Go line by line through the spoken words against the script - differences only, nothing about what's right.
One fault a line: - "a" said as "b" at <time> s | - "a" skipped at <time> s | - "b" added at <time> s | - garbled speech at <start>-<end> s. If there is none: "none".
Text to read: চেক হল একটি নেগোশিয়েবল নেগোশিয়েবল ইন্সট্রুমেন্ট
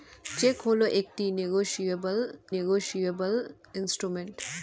none